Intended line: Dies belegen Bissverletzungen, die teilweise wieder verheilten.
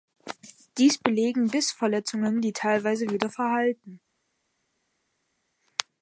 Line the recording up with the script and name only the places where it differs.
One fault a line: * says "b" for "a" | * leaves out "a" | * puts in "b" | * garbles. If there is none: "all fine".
all fine